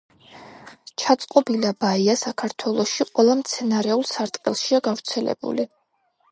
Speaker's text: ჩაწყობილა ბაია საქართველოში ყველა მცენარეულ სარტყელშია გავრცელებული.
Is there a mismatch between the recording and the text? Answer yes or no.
no